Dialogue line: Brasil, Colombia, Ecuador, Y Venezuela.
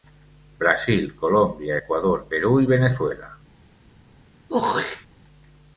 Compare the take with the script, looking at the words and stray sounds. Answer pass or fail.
fail